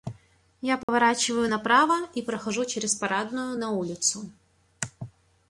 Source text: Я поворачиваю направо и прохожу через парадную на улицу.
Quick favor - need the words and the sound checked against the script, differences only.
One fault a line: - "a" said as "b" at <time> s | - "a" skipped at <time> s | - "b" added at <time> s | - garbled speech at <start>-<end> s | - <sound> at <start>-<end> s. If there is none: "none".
- dropout at 0.8-0.9 s